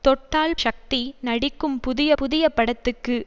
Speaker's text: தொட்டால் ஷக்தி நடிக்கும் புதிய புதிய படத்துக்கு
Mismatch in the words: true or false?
false